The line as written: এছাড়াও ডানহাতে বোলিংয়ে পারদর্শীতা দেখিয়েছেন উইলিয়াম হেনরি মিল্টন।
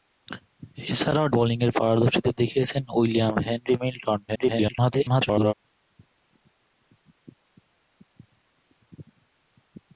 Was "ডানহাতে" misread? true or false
true